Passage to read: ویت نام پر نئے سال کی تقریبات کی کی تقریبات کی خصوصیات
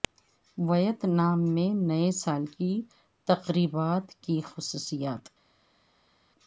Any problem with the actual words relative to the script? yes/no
yes